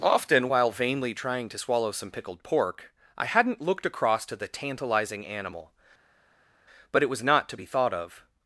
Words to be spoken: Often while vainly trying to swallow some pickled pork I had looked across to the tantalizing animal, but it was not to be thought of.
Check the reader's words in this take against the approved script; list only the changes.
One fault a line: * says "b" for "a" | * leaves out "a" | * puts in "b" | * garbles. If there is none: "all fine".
* says "hadn't" for "had"